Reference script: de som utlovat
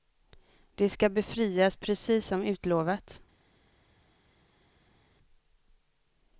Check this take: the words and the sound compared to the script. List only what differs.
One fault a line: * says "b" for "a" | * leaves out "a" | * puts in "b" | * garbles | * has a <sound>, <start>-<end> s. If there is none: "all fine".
* puts in "ska befrias precis"